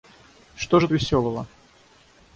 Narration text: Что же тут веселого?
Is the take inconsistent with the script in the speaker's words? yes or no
yes